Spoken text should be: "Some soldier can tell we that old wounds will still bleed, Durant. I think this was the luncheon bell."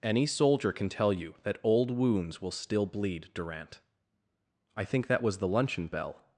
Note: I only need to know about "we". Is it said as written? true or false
false